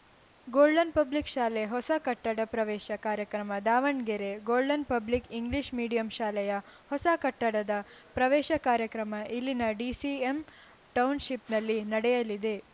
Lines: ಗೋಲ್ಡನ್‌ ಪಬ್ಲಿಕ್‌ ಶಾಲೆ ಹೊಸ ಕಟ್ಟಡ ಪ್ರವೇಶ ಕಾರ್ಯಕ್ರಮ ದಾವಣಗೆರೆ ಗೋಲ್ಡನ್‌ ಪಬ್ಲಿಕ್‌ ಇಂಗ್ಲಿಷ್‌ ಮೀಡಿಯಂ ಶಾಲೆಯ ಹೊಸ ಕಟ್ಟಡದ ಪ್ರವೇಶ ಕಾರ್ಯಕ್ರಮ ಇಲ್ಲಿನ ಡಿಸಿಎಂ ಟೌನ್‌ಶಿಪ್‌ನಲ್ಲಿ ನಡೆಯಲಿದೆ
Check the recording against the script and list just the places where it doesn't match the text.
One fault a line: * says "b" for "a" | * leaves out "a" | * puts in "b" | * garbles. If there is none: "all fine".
all fine